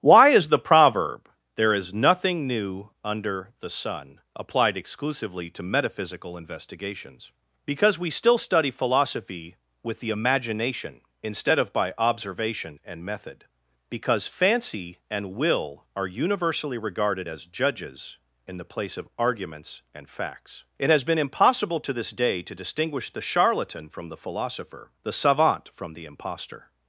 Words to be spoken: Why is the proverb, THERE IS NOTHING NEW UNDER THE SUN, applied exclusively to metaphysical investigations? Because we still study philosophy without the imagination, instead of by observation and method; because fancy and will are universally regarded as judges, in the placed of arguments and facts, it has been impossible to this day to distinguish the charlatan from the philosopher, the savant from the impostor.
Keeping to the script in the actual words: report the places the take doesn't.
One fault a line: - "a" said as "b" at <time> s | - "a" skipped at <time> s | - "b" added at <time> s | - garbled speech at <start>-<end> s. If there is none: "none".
- "without" said as "with" at 9.8 s
- "placed" said as "place" at 18.7 s